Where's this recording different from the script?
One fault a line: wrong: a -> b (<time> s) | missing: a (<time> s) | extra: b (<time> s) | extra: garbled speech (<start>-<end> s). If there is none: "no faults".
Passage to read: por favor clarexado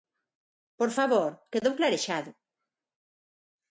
extra: quedou (1.5 s)